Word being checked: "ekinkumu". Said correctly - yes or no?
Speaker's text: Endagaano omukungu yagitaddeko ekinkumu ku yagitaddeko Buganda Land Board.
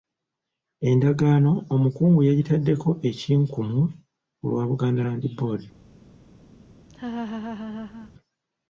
yes